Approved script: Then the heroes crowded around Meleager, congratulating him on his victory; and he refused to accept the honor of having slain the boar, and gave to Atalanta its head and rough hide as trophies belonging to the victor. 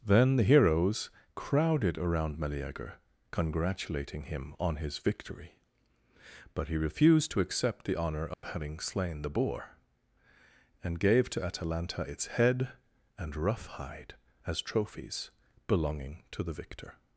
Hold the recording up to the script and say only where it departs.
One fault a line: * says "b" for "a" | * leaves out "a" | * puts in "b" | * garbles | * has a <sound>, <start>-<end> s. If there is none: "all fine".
* says "but" for "and"
* has a dropout, 8.3-8.4 s